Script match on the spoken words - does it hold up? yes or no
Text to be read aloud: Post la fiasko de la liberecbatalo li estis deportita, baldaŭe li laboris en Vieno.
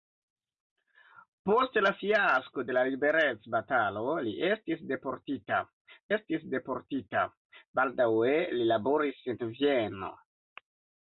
no